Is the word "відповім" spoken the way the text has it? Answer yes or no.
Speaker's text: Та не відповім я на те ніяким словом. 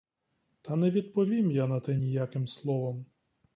yes